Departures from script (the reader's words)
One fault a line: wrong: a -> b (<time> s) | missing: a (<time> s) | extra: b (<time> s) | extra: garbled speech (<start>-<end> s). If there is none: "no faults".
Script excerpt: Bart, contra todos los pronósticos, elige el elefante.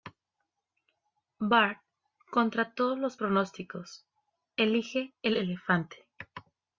no faults